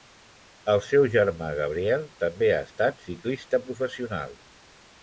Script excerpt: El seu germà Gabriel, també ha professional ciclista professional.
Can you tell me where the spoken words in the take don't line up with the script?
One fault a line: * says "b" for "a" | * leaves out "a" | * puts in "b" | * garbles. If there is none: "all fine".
* says "estat" for "professional"